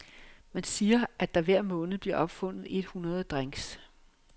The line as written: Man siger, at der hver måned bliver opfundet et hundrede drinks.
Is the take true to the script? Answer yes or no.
yes